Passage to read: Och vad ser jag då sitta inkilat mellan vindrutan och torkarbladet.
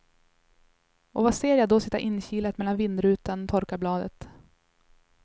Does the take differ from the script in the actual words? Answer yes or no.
no